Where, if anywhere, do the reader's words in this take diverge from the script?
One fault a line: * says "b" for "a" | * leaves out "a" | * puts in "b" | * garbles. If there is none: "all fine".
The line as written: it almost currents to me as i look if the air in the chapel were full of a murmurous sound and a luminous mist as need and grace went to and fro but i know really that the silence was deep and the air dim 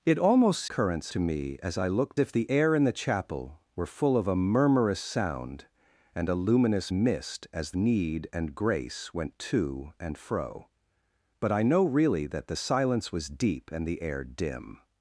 all fine